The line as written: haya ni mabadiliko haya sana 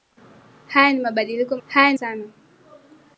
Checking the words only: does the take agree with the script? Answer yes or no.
yes